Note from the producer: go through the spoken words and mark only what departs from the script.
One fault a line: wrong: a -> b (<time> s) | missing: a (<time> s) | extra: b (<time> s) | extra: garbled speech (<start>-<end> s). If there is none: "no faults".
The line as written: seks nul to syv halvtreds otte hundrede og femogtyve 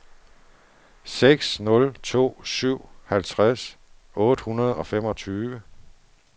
no faults